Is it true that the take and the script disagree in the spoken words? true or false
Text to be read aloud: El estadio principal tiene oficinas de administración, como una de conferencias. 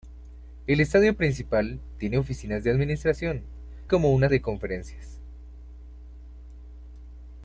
false